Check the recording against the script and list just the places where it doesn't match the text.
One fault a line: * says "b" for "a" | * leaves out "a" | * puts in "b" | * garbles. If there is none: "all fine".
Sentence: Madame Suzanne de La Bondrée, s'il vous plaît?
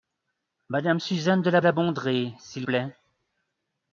* puts in "La"
* leaves out "vous"